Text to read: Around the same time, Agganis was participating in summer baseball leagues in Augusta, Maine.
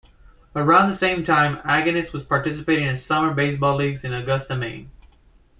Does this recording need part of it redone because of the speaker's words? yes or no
no